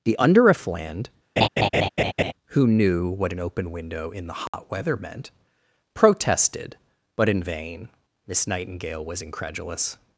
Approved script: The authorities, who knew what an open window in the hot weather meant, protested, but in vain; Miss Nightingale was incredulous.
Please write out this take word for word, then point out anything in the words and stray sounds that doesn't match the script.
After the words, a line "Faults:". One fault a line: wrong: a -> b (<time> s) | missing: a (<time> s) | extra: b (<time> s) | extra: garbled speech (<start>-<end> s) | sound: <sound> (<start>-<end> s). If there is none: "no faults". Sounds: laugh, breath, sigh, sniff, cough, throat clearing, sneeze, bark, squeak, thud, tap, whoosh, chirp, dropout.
The underifland, who knew what an open window in the hot weather meant, protested, but in vain; Miss Nightingale was incredulous.
Faults:
wrong: authorities -> underifland (0.2 s)
sound: laugh (1.4-2.3 s)
sound: dropout (4.5-4.5 s)